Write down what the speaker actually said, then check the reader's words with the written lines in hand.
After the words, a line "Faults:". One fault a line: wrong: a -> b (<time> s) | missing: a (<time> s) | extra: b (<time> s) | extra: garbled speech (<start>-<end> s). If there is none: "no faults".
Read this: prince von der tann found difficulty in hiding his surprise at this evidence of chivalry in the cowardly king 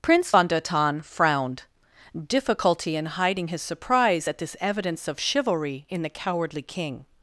prince von der tann frowned difficulty in hiding his surprise at this evidence of chivalry in the cowardly king
Faults:
wrong: found -> frowned (1.0 s)